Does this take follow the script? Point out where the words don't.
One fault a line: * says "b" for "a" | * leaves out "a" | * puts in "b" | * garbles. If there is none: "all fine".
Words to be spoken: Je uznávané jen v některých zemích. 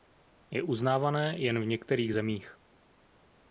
all fine